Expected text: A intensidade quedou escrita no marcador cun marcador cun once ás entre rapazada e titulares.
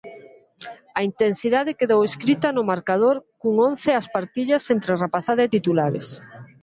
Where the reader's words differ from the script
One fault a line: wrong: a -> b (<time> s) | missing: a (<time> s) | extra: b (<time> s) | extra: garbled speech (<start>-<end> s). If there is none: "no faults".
missing: marcador cun (3.5 s)
extra: partillas (4.2 s)